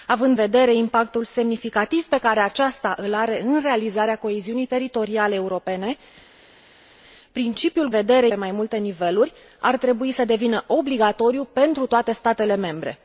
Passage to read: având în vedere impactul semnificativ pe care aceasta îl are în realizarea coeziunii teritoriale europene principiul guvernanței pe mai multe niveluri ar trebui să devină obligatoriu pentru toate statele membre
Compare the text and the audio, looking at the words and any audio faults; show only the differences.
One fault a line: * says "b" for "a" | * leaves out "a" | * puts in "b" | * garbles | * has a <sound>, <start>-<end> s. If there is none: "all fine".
* leaves out "în"
* says "vedere" for "guvernanței"